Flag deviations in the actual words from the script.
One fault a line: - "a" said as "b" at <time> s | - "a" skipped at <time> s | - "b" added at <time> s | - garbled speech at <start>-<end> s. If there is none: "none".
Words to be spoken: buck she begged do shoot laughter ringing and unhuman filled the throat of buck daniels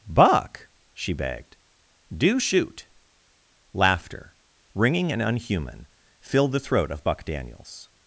none